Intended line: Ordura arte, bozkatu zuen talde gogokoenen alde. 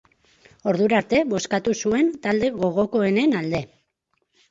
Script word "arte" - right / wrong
right